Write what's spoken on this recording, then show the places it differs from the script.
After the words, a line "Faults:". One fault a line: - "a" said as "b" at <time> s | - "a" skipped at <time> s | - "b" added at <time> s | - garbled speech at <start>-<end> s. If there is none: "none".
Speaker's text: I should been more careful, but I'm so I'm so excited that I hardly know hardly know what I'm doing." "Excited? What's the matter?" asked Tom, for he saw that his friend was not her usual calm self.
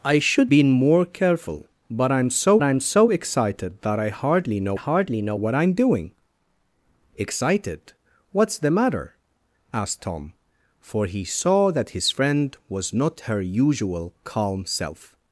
I should been more careful, but I'm so I'm so excited that I hardly know hardly know what I'm doing." "Excited? What's the matter?" asked Tom, for he saw that his friend was not her usual calm self.
Faults:
none